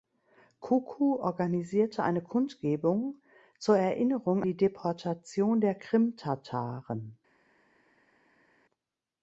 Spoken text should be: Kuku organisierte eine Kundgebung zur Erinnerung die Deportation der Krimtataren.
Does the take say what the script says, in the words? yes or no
yes